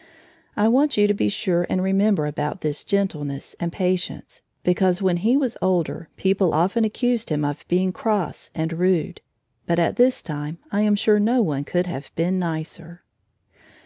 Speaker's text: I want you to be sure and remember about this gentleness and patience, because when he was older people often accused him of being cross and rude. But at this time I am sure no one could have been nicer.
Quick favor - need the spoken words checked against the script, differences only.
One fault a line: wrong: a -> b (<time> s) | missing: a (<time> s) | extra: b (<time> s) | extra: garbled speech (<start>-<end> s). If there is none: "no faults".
no faults